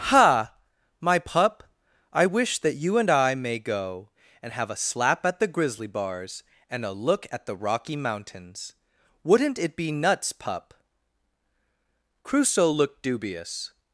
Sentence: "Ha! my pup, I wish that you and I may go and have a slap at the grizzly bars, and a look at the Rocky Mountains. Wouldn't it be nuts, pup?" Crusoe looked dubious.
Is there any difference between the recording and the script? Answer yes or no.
no